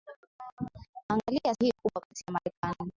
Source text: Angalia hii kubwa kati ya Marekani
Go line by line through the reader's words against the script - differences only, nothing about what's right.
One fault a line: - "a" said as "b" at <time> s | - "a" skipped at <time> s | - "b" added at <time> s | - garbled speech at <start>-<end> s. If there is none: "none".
none